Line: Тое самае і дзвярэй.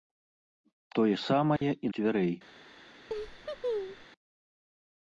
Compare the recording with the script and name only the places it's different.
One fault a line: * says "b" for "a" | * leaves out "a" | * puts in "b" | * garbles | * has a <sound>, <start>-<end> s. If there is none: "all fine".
* has a dropout, 1.6-1.6 s
* has a laugh, 3.1-4.1 s